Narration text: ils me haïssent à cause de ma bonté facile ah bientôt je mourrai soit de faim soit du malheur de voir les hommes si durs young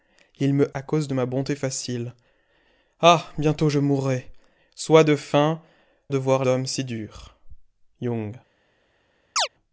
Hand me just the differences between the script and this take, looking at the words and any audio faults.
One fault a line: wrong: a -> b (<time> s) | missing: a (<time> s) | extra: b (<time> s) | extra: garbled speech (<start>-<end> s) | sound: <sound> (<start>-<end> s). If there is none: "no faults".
missing: haïssent (0.7 s)
missing: soit du malheur (5.6 s)
missing: les (6.4 s)
sound: chirp (9.4-9.5 s)